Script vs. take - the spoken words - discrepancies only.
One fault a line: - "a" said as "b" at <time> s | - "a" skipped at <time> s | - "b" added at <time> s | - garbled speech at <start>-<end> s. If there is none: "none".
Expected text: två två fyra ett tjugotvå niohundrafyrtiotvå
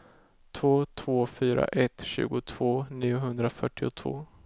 none